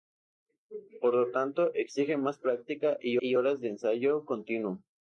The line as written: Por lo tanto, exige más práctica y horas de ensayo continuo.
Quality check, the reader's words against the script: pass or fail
fail